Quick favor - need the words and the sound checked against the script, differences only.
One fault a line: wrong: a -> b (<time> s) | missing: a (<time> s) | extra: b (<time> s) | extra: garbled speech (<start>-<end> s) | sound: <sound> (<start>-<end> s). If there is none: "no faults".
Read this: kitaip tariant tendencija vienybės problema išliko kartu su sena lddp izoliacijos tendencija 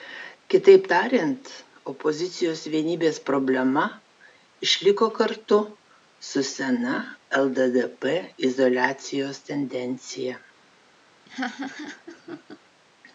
wrong: tendencija -> opozicijos (1.9 s)
sound: laugh (11.3-12.6 s)